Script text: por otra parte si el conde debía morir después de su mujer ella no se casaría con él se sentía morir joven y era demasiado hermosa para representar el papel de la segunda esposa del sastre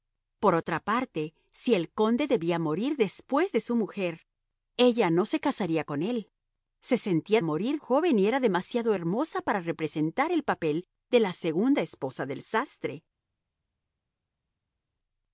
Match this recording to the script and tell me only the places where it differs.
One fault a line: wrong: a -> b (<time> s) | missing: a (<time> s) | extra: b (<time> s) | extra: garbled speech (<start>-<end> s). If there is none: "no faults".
no faults